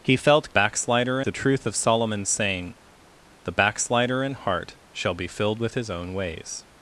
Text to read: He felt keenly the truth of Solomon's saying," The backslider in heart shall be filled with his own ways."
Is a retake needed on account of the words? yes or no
yes